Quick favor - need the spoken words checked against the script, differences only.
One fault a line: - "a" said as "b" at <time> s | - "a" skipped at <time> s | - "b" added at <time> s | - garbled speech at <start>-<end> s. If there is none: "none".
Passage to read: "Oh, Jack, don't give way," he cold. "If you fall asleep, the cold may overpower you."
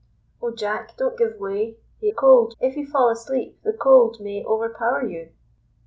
none